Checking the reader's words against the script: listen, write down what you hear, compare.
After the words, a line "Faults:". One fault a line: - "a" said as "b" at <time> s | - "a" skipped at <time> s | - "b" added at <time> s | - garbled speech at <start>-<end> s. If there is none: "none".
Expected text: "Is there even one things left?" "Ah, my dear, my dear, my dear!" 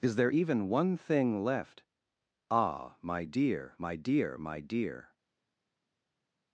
"Is there even one thing left?" "Ah, my dear, my dear, my dear!"
Faults:
- "things" said as "thing" at 1.0 s